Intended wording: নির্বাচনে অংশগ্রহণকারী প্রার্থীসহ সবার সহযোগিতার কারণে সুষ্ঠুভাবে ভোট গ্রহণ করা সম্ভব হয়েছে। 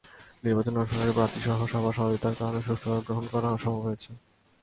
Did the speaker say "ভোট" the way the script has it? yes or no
no